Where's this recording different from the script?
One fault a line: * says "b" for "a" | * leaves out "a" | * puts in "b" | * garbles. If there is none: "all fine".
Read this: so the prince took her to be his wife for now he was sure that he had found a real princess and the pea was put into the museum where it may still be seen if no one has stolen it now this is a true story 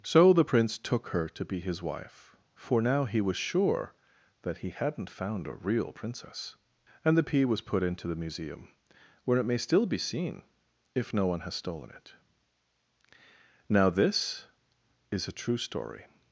* says "hadn't" for "had"